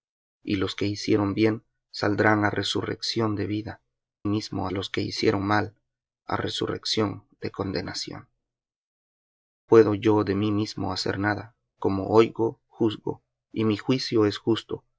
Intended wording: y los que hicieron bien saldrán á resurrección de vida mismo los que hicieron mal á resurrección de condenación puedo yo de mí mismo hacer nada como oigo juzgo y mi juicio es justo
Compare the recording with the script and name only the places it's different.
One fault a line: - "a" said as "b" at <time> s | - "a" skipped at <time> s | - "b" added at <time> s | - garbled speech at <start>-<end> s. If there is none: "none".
none